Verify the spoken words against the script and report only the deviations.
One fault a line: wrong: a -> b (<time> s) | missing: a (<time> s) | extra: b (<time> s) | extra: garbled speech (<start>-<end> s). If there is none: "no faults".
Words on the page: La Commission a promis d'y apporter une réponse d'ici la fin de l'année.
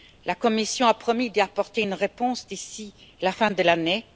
no faults